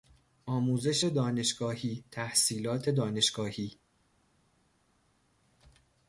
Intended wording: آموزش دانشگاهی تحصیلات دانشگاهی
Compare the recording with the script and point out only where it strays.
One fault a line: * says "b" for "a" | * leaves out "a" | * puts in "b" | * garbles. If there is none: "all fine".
all fine